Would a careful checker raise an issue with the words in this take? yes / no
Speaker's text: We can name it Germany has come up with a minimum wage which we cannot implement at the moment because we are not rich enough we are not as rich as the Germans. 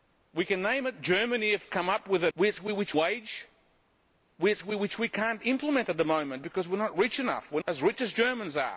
yes